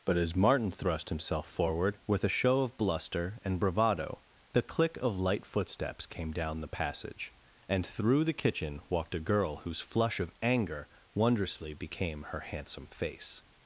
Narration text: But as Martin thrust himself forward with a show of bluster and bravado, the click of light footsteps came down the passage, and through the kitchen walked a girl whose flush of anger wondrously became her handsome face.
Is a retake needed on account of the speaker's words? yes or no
no